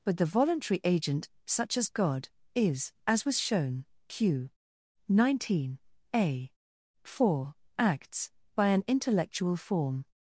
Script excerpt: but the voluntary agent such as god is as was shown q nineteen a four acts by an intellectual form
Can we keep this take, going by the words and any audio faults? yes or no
yes